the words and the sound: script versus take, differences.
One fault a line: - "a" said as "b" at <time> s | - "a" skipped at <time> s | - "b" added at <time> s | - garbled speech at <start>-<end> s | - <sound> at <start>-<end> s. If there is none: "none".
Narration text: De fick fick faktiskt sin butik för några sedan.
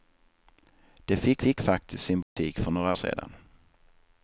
- dropout at 2.2-2.4 s